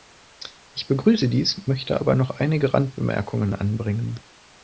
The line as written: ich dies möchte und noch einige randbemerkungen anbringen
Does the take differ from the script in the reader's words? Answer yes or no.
yes